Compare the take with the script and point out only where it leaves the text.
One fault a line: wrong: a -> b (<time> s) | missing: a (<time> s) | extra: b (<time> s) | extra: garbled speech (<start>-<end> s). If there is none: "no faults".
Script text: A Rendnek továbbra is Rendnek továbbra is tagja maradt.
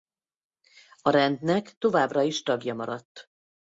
missing: Rendnek továbbra is (2.4 s)